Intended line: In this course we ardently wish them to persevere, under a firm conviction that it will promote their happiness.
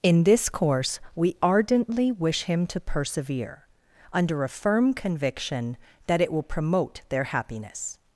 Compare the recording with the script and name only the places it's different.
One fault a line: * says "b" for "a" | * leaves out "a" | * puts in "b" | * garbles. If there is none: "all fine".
* says "him" for "them"